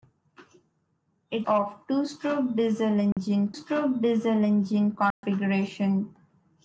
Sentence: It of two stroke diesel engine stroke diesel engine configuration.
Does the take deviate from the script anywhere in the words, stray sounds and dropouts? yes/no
yes